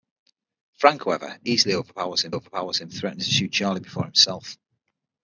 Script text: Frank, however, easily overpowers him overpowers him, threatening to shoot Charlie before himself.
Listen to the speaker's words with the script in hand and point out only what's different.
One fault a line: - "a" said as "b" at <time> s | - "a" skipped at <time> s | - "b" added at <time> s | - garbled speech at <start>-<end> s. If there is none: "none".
none